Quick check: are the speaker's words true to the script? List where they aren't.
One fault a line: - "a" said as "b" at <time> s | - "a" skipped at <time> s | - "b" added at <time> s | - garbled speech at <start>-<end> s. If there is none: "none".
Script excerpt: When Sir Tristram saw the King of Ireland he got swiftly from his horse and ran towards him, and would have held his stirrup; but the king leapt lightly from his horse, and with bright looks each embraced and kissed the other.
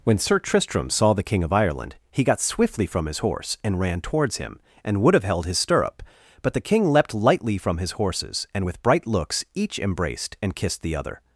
- "horse" said as "horses" at 7.9 s